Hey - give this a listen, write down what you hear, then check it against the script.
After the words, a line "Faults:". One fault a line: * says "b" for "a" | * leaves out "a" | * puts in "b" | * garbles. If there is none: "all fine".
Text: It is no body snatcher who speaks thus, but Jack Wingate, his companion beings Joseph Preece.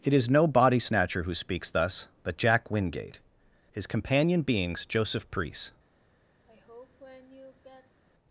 It is no body snatcher who speaks thus, but Jack Wingate, his companion beings Joseph Preece.
Faults:
all fine